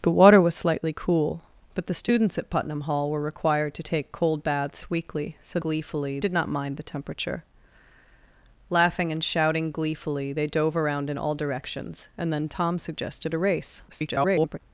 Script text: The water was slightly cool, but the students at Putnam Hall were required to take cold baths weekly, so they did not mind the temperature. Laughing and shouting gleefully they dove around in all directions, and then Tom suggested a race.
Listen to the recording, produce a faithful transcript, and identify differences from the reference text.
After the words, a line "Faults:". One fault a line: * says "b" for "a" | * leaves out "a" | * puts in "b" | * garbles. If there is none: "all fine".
The water was slightly cool, but the students at Putnam Hall were required to take cold baths weekly, so gleefully did not mind the temperature. Laughing and shouting gleefully they dove around in all directions, and then Tom suggested a race. [garbled]
Faults:
* says "gleefully" for "they"
* garbles